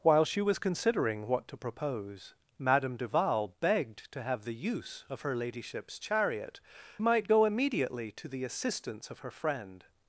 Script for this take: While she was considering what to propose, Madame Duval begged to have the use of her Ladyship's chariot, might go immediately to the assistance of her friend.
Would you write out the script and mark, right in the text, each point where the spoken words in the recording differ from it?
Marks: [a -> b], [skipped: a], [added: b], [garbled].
While she was considering what to propose, Madame Duval begged to have the use of her Ladyship's chariot, might go immediately to the assistance of her friend.